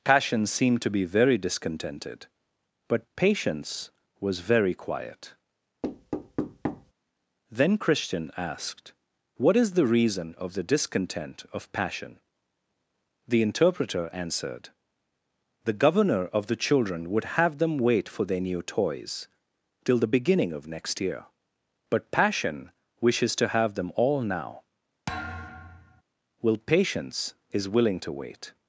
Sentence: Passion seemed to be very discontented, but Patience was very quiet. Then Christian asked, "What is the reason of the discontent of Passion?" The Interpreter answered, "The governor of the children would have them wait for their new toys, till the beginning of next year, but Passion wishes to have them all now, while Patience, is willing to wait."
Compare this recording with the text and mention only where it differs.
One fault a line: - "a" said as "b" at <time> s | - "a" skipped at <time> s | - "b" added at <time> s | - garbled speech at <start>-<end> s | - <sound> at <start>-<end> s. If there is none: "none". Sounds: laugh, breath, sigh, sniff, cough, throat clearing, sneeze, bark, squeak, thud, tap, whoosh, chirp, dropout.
- thud at 5.8-6.9 s
- thud at 25.1-26.0 s
- "while" said as "will" at 26.4 s